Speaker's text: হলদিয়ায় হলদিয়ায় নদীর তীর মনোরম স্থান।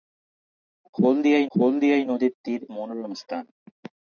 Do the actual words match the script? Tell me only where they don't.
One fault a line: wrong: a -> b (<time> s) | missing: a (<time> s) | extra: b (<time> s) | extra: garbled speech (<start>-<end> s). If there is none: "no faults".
no faults